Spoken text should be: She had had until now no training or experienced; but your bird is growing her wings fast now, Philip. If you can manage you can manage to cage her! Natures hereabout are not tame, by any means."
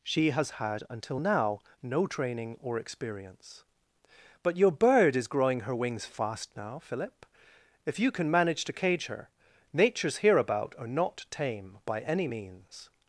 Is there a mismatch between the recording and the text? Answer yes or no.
yes